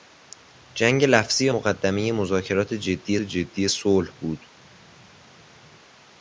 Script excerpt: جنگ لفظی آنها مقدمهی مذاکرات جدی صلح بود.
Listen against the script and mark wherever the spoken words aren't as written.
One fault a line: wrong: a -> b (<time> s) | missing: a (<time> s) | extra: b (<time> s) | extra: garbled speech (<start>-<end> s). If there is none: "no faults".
missing: آنها (1.5 s)
extra: جدی (3.2 s)